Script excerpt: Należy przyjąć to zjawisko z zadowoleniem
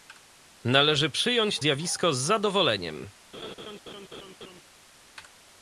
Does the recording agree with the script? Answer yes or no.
no